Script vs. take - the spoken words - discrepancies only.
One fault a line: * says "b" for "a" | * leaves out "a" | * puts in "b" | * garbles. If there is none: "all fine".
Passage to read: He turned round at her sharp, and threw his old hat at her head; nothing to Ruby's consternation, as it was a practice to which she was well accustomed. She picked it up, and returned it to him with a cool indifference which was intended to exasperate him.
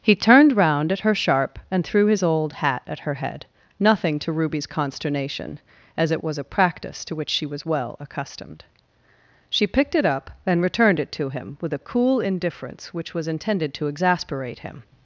all fine